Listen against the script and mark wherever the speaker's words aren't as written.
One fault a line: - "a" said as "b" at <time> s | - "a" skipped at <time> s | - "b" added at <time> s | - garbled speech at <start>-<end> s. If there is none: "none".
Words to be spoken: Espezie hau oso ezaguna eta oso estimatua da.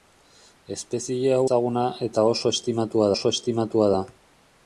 - "oso" skipped at 1.4 s
- "oso estimatua" added at 3.2 s